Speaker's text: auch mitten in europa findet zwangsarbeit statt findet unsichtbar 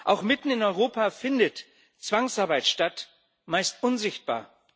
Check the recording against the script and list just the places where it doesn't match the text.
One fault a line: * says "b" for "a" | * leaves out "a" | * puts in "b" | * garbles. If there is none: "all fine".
* says "meist" for "findet"